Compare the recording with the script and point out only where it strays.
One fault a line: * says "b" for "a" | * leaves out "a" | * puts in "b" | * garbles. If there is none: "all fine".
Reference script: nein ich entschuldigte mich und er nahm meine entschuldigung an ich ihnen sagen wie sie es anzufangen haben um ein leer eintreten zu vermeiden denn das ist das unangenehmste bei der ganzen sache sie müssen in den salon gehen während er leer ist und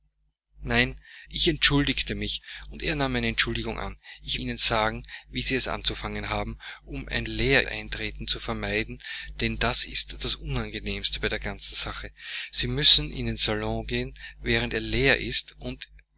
all fine